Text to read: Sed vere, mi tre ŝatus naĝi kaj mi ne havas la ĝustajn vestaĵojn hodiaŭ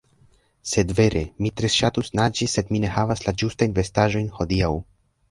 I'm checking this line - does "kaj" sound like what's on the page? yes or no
no